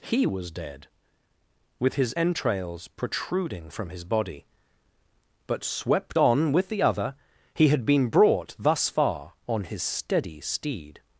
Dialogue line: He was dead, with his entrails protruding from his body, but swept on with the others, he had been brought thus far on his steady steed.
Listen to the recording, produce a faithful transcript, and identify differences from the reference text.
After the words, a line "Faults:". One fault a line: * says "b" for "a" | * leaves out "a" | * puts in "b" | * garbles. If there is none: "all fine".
He was dead, with his entrails protruding from his body, but swept on with the other, he had been brought thus far on his steady steed.
Faults:
* says "other" for "others"